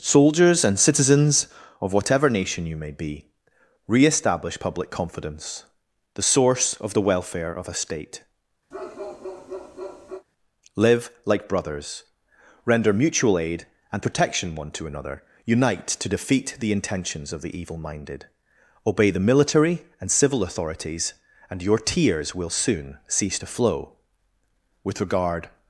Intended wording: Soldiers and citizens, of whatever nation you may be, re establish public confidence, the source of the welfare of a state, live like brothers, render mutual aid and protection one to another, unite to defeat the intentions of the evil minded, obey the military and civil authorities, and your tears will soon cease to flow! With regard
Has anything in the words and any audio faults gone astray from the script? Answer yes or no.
yes